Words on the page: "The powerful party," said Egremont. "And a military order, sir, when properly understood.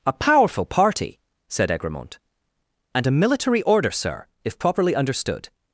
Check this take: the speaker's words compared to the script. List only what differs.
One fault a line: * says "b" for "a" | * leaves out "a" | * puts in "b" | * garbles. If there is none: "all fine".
* says "A" for "The"
* says "if" for "when"